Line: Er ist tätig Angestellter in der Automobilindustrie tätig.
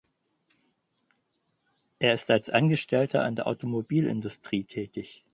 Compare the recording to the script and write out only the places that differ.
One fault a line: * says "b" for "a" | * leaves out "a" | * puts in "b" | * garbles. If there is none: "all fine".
* says "als" for "tätig"